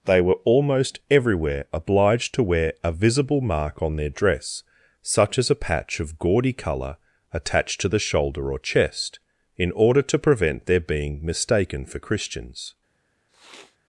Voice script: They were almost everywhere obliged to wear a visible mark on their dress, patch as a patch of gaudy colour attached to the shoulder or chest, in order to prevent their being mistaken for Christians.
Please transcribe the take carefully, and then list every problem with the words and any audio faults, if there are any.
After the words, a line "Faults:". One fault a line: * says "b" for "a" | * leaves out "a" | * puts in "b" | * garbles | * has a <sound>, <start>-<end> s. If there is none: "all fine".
They were almost everywhere obliged to wear a visible mark on their dress, such as a patch of gaudy colour attached to the shoulder or chest, in order to prevent their being mistaken for Christians.
Faults:
* says "such" for "patch"
* has a sniff, 13.3-13.8 s